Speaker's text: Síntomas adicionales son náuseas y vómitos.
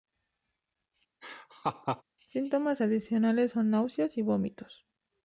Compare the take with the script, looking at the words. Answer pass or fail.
pass